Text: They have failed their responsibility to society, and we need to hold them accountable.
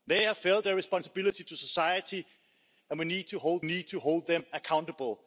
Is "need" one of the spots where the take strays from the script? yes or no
no